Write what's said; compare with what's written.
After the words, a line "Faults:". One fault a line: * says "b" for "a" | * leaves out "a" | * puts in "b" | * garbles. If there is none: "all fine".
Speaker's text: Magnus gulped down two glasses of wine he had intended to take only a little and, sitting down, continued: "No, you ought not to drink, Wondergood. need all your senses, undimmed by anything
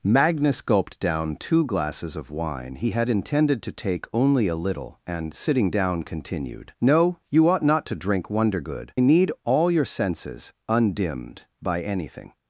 Magnus gulped down two glasses of wine he had intended to take only a little and, sitting down, continued: "No, you ought not to drink, Wondergood. need all your senses, undimmed by anything
Faults:
all fine